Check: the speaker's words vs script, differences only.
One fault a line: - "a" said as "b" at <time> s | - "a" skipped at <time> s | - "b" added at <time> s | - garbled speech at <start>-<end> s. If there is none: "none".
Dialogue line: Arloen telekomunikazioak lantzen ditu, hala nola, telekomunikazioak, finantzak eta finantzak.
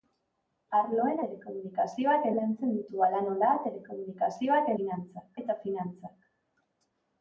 none